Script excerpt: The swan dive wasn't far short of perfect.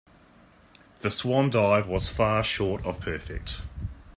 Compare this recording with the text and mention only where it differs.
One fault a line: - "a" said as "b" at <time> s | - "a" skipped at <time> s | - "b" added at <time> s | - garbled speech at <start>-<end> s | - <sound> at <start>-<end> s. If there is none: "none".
- "wasn't" said as "was" at 1.8 s